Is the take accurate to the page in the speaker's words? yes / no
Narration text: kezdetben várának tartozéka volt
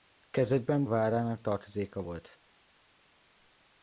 yes